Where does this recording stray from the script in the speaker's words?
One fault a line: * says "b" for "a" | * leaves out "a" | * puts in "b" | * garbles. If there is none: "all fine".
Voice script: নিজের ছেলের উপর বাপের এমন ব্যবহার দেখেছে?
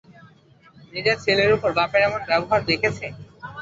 all fine